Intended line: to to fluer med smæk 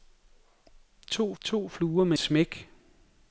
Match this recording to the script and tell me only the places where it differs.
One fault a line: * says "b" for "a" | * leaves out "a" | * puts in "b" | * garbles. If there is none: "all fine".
all fine